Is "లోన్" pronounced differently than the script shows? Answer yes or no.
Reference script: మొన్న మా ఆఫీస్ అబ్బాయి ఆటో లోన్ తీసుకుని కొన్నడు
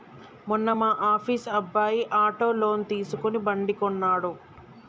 no